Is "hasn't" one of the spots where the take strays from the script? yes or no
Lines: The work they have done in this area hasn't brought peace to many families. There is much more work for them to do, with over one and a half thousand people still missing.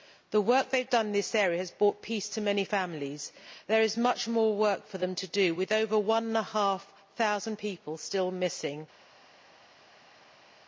yes